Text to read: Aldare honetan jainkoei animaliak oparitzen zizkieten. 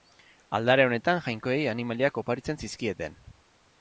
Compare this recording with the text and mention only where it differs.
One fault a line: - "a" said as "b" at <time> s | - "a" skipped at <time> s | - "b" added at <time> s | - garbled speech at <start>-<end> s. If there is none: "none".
none